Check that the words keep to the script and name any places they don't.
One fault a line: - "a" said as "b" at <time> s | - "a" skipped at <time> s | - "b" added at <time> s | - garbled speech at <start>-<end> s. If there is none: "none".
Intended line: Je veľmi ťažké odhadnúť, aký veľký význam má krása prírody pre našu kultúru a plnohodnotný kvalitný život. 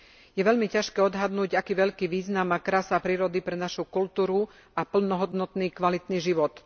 none